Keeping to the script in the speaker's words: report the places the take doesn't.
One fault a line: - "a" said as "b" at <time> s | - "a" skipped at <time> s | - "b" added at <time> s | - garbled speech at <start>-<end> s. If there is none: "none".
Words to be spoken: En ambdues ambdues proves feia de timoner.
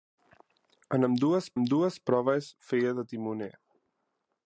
none